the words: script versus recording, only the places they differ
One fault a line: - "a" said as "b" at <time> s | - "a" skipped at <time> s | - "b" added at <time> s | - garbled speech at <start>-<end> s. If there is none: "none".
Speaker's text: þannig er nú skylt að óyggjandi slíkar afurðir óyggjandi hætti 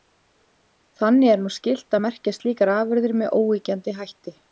- "óyggjandi" said as "merkja" at 2.0 s
- "með" added at 3.2 s